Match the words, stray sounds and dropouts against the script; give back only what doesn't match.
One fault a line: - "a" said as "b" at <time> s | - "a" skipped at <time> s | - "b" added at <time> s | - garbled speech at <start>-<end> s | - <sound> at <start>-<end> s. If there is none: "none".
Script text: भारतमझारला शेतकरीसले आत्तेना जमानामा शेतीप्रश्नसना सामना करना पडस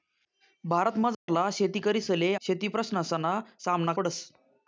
- dropout at 1.1-1.3 s
- "आत्तेना जमानामा" skipped at 2.3 s
- "करना" skipped at 4.0 s